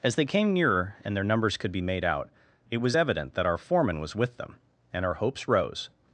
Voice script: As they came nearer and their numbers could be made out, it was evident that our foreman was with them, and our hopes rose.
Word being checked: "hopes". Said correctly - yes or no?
yes